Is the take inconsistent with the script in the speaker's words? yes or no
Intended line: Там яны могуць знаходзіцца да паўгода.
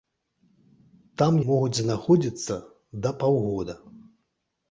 yes